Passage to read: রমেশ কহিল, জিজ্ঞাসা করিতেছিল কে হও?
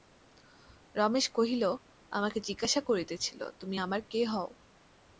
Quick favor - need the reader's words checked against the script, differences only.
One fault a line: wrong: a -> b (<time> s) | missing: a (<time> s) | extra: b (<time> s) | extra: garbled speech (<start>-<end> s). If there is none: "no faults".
extra: আমাকে (2.1 s)
extra: তুমি আমার (3.6 s)